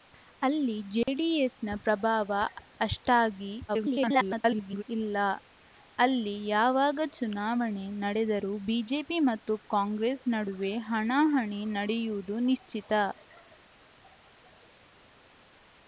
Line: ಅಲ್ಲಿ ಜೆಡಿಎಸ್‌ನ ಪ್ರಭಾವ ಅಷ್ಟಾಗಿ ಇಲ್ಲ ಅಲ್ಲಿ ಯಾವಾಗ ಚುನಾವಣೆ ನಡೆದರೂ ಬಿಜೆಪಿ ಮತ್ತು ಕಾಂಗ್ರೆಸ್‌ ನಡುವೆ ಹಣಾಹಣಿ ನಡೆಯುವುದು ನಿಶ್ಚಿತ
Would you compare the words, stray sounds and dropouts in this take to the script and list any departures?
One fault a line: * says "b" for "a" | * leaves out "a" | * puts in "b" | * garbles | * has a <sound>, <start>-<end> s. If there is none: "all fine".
* has a dropout, 1.0-1.1 s
* garbles